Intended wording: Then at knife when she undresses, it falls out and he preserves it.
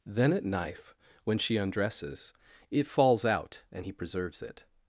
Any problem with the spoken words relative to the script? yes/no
no